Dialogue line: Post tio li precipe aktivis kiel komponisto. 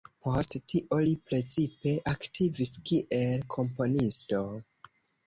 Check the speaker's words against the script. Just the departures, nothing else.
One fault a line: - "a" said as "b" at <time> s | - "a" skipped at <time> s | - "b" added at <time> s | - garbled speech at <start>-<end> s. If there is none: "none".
none